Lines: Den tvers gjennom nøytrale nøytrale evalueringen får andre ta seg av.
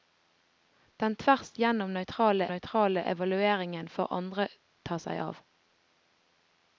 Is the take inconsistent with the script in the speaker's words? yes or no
no